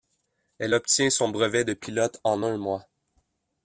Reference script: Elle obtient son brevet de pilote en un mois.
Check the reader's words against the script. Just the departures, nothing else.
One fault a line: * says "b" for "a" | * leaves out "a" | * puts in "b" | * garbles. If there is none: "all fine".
all fine